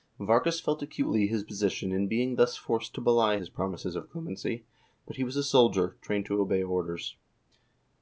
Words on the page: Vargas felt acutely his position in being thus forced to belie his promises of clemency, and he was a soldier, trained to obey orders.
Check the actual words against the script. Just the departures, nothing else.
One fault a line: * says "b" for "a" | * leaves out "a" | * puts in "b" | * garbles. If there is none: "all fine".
* says "but" for "and"